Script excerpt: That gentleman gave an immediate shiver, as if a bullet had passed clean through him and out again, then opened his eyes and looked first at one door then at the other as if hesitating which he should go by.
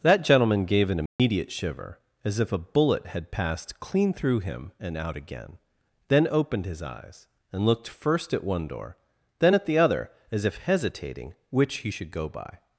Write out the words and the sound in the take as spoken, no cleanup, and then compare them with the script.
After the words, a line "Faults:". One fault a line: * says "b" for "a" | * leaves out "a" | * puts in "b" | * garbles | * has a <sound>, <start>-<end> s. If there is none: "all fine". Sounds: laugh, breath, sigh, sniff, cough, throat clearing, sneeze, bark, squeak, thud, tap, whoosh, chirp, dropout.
That gentleman gave an immediate shiver, as if a bullet had passed clean through him and out again, then opened his eyes and looked first at one door then at the other as if hesitating which he should go by.
Faults:
* has a dropout, 1.1-1.2 s